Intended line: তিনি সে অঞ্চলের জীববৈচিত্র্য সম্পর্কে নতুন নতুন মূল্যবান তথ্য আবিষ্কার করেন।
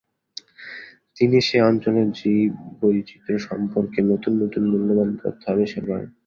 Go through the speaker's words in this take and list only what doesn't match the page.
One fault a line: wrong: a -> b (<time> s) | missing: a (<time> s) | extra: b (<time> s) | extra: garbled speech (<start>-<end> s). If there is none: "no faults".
no faults